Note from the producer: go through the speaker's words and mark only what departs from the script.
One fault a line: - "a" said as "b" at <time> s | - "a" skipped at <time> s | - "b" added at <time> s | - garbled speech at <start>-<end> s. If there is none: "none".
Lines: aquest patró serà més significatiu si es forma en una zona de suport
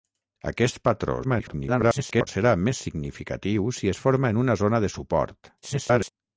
- garbled speech at 1.2-2.3 s
- garbled speech at 5.6-6.1 s